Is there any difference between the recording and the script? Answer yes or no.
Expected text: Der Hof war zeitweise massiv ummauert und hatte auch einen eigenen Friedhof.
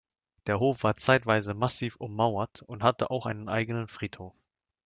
no